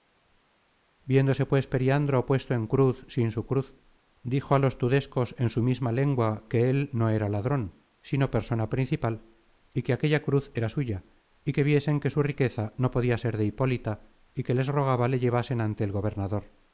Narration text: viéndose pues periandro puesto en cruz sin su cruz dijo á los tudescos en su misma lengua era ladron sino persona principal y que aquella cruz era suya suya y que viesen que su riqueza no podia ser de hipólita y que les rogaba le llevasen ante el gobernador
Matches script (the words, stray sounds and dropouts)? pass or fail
fail